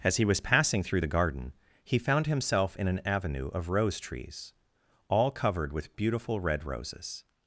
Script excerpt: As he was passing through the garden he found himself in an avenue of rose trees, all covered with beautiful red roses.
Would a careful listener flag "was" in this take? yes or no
no